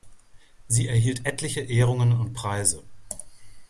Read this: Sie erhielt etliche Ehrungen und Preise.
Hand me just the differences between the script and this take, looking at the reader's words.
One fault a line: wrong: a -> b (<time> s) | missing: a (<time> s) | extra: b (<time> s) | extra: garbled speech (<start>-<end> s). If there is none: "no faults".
no faults